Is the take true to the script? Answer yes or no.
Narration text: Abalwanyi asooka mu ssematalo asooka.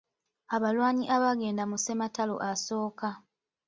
no